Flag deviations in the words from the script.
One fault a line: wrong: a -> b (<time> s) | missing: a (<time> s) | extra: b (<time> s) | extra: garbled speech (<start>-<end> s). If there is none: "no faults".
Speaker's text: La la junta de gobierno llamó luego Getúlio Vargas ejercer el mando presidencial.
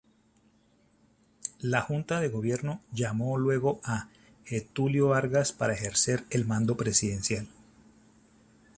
missing: la (1.8 s)
extra: a (3.8 s)
extra: para (5.5 s)